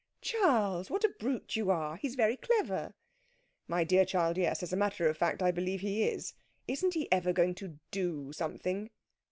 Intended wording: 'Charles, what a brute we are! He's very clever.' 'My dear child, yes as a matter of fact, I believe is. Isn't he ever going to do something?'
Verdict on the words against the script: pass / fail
fail